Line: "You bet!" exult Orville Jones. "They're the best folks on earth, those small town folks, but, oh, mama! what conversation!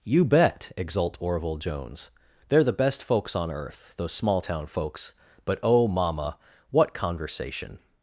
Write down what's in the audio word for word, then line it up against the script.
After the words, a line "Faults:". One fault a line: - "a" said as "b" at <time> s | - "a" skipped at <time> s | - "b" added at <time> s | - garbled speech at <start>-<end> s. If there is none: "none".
"You bet!" exult Orville Jones. "They're the best folks on earth, those small town folks, but, oh, mama! what conversation!
Faults:
none